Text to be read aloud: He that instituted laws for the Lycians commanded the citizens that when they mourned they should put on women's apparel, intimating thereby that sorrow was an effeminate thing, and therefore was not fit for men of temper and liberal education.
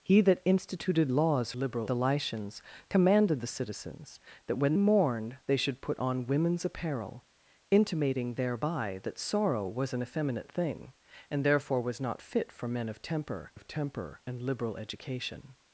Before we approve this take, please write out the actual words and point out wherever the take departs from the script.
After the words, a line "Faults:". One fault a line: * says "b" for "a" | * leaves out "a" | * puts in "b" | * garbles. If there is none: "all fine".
He that instituted laws liberal the Lycians commanded the citizens that when mourned they should put on women's apparel, intimating thereby that sorrow was an effeminate thing, and therefore was not fit for men of temper of temper and liberal education.
Faults:
* says "liberal" for "for"
* leaves out "they"
* puts in "of temper"